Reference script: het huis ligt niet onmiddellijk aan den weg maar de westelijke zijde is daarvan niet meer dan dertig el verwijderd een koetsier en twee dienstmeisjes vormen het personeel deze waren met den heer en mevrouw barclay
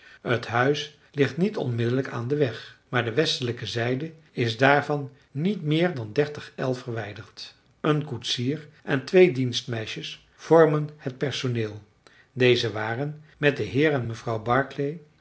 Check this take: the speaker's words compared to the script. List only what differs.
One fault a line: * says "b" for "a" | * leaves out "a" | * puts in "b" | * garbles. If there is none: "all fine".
all fine